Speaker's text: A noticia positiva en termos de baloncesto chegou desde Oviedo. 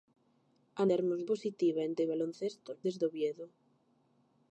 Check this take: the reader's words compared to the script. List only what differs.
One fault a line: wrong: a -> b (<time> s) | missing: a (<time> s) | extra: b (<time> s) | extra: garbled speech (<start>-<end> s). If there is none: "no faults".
wrong: noticia -> termos (0.9 s)
missing: termos (1.9 s)
missing: chegou (2.7 s)